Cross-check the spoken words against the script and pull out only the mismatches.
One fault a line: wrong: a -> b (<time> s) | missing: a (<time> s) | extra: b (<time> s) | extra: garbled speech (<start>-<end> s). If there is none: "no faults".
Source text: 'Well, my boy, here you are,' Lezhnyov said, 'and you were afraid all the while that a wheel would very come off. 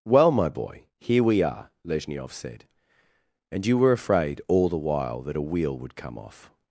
wrong: you -> we (1.2 s)
missing: very (6.0 s)